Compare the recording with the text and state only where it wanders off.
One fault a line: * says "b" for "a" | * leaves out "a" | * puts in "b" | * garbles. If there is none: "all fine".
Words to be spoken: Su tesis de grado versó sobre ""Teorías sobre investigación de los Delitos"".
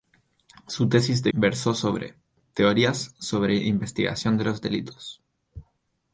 * leaves out "grado"